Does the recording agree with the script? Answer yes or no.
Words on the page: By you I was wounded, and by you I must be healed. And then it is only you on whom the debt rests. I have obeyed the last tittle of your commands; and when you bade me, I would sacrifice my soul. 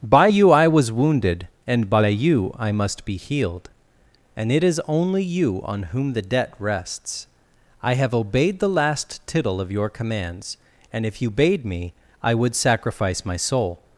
no